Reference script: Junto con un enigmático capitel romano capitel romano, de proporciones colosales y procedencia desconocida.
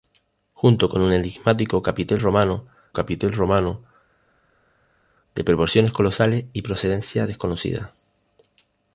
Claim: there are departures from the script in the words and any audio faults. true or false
false